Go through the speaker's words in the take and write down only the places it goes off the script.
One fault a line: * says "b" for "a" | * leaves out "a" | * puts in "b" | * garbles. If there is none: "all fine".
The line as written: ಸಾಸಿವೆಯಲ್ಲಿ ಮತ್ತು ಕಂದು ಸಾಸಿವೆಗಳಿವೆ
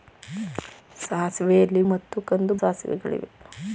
all fine